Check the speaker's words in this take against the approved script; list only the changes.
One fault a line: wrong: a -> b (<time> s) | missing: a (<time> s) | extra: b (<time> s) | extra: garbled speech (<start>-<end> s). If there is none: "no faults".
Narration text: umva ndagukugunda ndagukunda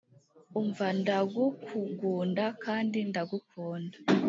extra: kandi (2.6 s)